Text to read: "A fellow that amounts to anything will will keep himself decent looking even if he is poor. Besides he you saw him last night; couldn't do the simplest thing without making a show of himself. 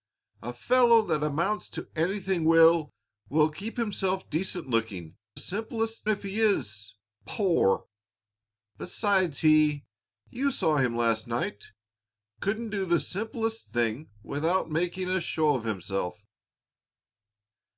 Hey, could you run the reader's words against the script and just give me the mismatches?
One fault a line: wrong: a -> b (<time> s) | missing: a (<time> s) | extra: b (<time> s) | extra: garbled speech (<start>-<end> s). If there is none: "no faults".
wrong: even -> simplest (5.4 s)